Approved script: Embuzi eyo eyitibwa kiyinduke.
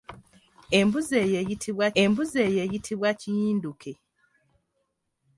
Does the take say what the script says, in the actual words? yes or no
no